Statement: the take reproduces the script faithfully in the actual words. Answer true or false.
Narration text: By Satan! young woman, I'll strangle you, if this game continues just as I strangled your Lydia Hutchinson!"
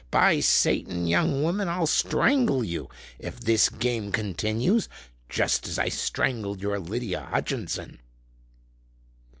true